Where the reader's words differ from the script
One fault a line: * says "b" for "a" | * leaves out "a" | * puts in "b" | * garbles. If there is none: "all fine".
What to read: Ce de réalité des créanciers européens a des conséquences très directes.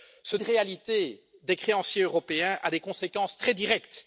all fine